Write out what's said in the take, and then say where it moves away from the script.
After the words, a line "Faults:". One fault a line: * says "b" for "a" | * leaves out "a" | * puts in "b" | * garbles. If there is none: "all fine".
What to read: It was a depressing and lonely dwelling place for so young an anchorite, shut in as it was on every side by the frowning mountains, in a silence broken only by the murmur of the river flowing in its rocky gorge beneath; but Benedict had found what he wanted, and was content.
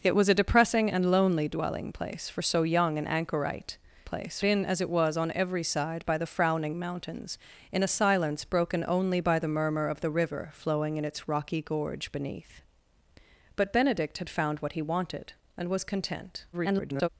It was a depressing and lonely dwelling place for so young an anchorite, place in as it was on every side by the frowning mountains, in a silence broken only by the murmur of the river flowing in its rocky gorge beneath; but Benedict had found what he wanted, and was content. [garbled]
Faults:
* says "place" for "shut"
* garbles